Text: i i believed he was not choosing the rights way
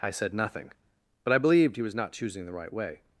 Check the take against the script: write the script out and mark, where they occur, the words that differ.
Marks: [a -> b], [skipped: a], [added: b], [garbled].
i [added: said nothing but] i believed he was not choosing the [rights -> right] way